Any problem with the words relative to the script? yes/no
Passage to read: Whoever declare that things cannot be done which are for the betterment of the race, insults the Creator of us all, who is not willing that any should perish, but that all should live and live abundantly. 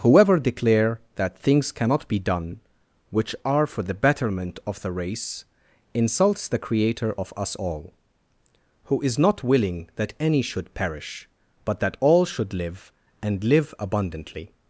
no